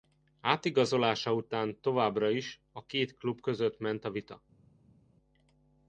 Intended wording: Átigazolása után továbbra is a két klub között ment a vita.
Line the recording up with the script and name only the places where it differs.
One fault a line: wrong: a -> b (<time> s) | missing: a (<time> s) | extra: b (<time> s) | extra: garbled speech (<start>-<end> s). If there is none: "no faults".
no faults